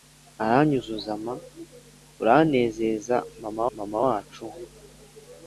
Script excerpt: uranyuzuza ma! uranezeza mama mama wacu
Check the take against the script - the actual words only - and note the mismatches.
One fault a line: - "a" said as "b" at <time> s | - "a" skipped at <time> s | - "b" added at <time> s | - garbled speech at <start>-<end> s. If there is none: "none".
none